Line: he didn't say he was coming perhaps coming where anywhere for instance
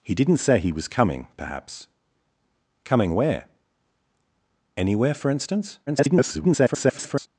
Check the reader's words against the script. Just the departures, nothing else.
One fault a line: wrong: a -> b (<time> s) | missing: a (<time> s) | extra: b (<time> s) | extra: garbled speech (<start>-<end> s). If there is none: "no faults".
extra: garbled speech (5.9-7.3 s)